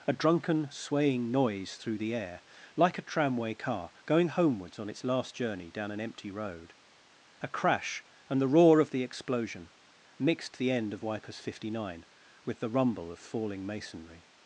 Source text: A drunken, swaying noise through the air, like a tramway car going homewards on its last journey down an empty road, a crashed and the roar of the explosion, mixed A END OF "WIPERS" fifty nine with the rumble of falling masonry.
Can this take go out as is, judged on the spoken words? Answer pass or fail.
fail